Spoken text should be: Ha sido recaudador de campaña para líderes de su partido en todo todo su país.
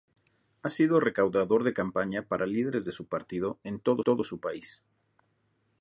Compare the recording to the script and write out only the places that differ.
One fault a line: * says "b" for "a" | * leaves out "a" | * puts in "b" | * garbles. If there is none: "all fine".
all fine